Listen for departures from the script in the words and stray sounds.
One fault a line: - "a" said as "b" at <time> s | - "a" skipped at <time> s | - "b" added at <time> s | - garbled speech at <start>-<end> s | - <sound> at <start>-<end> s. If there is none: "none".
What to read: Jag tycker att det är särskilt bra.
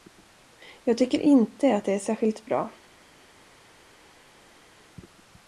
- "inte" added at 1.2 s